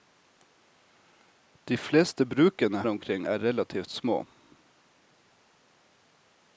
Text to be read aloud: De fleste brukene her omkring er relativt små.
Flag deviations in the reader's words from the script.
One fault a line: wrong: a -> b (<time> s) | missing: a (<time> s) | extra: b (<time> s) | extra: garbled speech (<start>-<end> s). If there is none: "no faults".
missing: her (2.8 s)